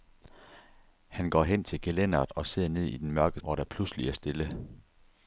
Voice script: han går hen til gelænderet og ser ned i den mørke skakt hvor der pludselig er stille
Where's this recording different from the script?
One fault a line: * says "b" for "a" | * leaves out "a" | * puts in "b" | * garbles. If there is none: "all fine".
* leaves out "skakt"